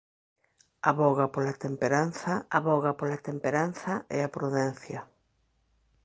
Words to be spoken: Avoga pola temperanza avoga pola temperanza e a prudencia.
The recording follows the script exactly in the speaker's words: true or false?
true